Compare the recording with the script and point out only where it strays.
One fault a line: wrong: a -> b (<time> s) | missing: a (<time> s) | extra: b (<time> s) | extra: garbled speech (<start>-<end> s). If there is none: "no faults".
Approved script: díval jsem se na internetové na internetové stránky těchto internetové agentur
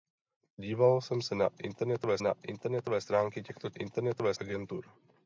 no faults